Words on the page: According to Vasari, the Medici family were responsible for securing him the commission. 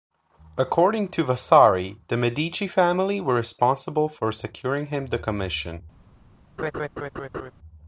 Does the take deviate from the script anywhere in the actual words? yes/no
no